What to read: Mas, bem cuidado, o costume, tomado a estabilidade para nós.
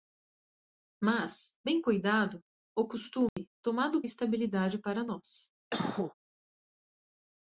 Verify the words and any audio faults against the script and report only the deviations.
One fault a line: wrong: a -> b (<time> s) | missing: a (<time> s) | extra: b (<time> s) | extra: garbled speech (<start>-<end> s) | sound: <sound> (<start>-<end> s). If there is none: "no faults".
sound: dropout (3.3-3.4 s)
sound: cough (5.7-6.1 s)